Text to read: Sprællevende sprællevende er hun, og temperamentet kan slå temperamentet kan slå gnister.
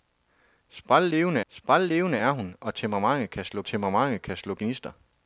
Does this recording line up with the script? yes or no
yes